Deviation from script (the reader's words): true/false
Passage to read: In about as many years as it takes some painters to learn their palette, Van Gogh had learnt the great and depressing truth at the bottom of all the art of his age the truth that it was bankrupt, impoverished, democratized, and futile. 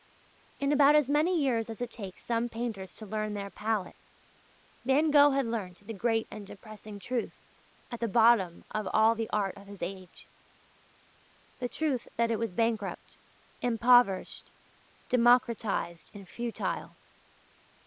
false